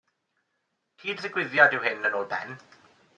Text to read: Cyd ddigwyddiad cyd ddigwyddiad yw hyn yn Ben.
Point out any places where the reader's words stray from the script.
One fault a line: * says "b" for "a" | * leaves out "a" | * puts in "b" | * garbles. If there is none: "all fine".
* leaves out "cyd ddigwyddiad"
* puts in "ôl"